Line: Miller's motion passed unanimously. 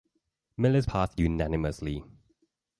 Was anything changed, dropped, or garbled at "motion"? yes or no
yes